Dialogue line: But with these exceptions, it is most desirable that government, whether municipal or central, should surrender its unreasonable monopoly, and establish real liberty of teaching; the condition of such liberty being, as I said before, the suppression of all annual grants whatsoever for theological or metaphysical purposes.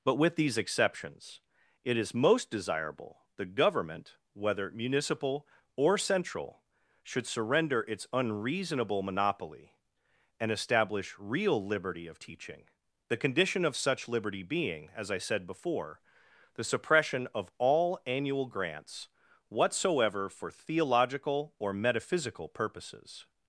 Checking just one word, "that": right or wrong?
wrong